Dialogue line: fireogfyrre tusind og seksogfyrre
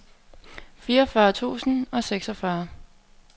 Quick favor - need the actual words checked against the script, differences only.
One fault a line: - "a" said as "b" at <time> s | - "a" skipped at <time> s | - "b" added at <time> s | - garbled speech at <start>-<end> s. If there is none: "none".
none